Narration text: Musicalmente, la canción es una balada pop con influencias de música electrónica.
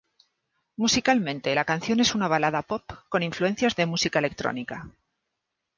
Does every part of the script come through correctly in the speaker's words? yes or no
yes